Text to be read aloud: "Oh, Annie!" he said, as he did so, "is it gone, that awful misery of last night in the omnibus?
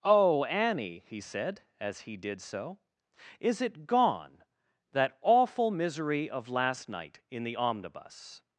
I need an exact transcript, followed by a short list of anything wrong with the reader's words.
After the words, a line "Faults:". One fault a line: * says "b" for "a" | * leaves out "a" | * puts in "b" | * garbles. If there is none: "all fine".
"Oh, Annie!" he said, as he did so, "is it gone, that awful misery of last night in the omnibus?
Faults:
all fine